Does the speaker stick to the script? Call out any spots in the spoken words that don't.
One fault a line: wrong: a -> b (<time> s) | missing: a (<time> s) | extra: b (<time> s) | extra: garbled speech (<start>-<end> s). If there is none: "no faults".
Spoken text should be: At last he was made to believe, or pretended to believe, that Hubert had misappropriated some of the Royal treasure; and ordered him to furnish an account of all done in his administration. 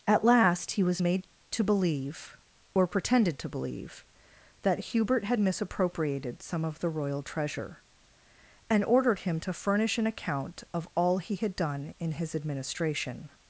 extra: he had (11.2 s)